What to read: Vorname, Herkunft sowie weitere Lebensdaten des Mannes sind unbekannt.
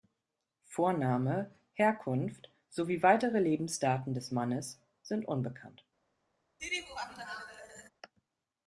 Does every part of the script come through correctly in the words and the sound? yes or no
no